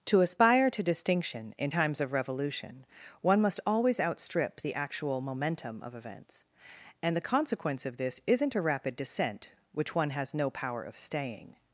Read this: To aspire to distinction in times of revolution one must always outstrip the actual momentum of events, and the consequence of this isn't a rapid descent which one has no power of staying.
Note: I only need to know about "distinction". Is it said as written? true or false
true